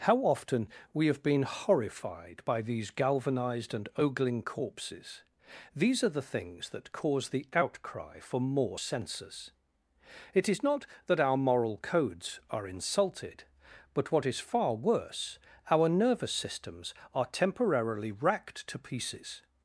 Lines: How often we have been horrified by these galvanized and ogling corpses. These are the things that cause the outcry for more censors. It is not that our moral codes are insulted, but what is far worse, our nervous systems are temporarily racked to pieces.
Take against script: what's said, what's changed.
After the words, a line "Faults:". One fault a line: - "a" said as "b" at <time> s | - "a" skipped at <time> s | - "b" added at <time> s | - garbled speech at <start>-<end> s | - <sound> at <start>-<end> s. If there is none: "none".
How often we have been horrified by these galvanized and ogling corpses. These are the things that cause the outcry for more censors. It is not that our moral codes are insulted, but what is far worse, our nervous systems are temporarily racked to pieces.
Faults:
none